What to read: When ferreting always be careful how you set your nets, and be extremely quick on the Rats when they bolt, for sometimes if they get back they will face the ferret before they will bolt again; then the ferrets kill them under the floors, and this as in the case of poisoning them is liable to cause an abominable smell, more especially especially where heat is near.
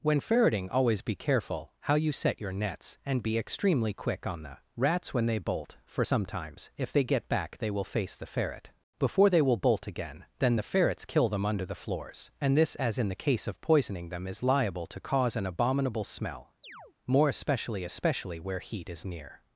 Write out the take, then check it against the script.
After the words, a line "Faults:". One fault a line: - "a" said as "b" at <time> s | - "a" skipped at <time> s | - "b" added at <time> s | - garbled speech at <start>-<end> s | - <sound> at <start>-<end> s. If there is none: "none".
When ferreting always be careful how you set your nets, and be extremely quick on the Rats when they bolt, for sometimes if they get back they will face the ferret before they will bolt again; then the ferrets kill them under the floors, and this as in the case of poisoning them is liable to cause an abominable smell, more especially especially where heat is near.
Faults:
- chirp at 16.6-16.9 s